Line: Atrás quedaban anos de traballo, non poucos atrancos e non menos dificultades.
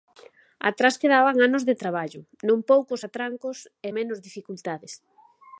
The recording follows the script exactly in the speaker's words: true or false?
false